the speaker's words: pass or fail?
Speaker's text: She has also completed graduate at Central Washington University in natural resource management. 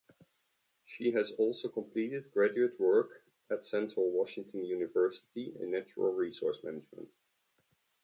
fail